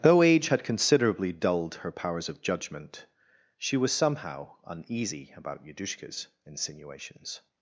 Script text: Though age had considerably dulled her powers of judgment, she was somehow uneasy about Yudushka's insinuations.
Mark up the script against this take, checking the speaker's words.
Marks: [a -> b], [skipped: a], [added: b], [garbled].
Though age had considerably dulled her powers of judgment, she was somehow uneasy about Yudushka's insinuations.